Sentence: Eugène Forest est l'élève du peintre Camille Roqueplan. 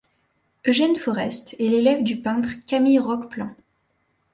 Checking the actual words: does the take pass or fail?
pass